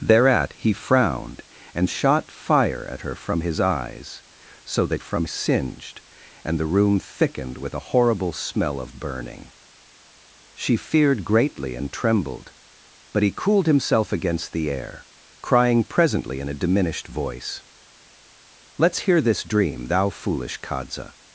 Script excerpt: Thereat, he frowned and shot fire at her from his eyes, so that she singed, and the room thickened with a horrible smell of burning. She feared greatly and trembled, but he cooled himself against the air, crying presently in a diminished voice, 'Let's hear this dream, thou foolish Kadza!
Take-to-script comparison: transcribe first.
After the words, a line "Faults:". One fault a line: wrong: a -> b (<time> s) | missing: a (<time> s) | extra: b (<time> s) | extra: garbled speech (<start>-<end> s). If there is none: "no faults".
Thereat, he frowned and shot fire at her from his eyes, so that from singed, and the room thickened with a horrible smell of burning. She feared greatly and trembled, but he cooled himself against the air, crying presently in a diminished voice, 'Let's hear this dream, thou foolish Kadza!
Faults:
wrong: she -> from (5.0 s)